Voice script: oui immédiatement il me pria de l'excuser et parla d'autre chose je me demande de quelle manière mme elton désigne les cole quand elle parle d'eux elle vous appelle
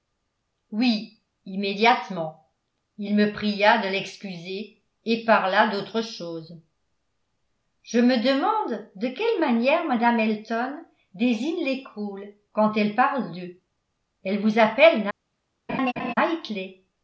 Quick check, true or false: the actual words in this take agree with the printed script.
true